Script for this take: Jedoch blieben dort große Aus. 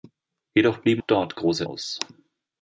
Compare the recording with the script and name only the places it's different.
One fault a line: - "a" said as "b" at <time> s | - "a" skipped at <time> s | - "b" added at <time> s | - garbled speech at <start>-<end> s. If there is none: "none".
none